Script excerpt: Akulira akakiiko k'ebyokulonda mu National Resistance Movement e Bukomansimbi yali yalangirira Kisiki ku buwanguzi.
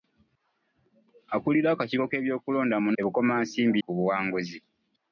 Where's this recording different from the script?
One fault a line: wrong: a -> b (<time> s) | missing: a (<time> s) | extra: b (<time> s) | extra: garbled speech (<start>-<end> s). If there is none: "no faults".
missing: National Resistance Movement (2.9 s)
missing: yali yalangirira Kisiki (3.8 s)